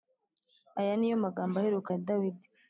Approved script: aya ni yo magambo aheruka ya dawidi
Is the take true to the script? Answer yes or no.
yes